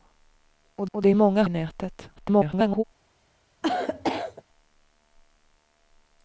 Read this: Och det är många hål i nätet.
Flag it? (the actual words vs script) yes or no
yes